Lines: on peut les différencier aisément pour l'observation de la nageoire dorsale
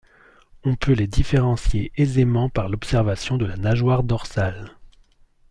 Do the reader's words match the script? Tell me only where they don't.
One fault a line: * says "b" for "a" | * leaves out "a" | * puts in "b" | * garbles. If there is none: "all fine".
* says "par" for "pour"